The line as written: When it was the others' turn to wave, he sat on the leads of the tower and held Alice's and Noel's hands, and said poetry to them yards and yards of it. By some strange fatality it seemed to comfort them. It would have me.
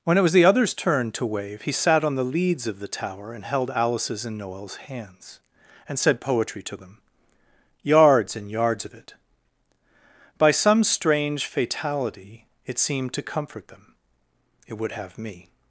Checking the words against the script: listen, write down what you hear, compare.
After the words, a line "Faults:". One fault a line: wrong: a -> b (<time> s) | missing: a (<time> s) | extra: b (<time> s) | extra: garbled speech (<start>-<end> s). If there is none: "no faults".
When it was the others' turn to wave, he sat on the leads of the tower and held Alice's and Noel's hands, and said poetry to them yards and yards of it. By some strange fatality it seemed to comfort them. It would have me.
Faults:
no faults